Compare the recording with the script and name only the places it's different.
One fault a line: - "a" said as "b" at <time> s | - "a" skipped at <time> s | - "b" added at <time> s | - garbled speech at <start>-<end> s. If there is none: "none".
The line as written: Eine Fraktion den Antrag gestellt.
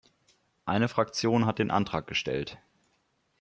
- "hat" added at 1.4 s